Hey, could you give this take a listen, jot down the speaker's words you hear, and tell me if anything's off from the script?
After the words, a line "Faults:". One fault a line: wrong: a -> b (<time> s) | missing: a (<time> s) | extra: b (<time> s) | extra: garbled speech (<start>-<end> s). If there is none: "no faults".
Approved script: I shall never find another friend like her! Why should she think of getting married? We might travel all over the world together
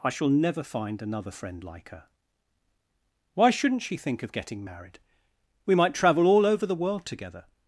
I shall never find another friend like her! Why shouldn't she think of getting married? We might travel all over the world together
Faults:
wrong: should -> shouldn't (3.5 s)